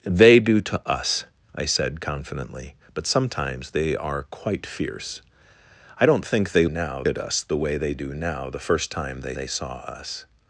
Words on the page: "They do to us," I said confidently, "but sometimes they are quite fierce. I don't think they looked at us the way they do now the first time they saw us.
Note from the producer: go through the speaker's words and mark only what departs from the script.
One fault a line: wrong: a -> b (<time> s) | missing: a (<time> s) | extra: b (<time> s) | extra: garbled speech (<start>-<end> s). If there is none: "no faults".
wrong: looked -> now (6.7 s)
extra: they (9.3 s)